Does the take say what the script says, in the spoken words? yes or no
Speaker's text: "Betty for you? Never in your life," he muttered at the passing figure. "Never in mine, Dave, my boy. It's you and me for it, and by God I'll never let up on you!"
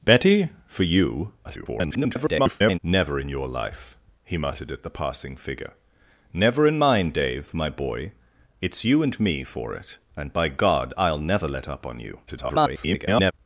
no